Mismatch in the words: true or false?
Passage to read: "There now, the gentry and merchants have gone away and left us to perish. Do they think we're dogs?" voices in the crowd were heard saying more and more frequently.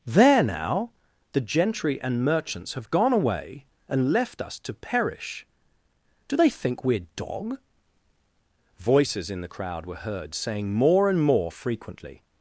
true